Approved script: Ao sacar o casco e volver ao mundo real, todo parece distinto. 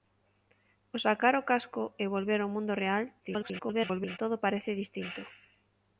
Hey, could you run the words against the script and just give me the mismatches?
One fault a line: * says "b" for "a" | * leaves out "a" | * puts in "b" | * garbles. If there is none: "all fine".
* garbles